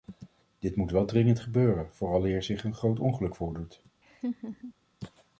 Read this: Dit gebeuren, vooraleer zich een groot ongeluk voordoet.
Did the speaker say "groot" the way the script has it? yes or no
yes